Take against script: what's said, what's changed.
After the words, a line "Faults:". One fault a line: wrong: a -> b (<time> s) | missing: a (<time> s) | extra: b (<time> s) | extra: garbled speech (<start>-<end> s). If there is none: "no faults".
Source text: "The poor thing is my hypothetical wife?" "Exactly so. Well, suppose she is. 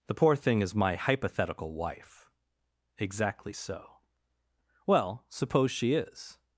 "The poor thing is my hypothetical wife?" "Exactly so. Well, suppose she is.
Faults:
no faults